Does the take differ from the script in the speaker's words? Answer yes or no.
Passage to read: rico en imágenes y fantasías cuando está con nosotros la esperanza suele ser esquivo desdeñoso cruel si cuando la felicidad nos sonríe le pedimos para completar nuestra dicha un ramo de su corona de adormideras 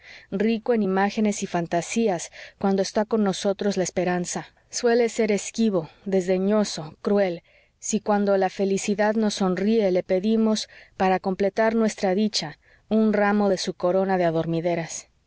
no